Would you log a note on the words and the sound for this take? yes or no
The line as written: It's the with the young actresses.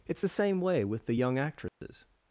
yes